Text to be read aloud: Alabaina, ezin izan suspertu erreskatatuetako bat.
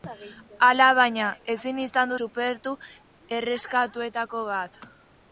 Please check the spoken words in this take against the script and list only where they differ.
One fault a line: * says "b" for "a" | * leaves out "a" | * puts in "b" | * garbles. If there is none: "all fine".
all fine